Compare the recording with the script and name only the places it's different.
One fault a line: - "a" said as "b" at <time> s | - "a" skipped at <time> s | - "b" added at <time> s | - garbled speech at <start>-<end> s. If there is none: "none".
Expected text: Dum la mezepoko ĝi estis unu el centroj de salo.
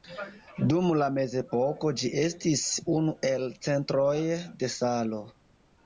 none